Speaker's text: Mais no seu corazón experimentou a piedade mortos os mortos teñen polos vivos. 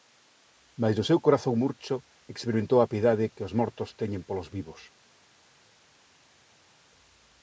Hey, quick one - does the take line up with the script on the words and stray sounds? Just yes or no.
no